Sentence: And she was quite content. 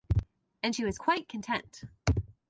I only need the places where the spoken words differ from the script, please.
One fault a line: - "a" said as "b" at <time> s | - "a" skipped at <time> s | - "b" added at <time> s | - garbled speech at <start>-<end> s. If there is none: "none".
none